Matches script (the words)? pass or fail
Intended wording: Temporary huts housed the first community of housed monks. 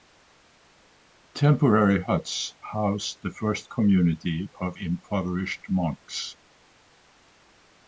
fail